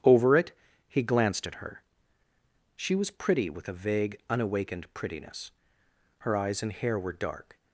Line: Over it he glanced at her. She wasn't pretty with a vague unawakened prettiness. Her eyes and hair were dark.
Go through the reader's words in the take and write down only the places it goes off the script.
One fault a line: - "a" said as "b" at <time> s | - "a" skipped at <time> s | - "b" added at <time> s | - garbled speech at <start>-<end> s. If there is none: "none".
- "wasn't" said as "was" at 3.0 s